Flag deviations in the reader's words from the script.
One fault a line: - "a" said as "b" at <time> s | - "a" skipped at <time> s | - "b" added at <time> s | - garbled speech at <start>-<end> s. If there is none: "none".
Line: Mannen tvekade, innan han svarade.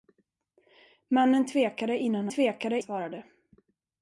- "han" said as "tvekade" at 2.3 s